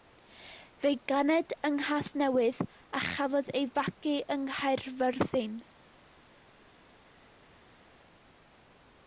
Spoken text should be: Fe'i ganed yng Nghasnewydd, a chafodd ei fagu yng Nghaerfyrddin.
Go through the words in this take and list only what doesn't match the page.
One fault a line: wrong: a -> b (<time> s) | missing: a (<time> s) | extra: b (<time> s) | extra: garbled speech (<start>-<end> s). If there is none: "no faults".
no faults